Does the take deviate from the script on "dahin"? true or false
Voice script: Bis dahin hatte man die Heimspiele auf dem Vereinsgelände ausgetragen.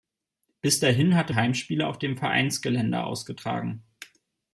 false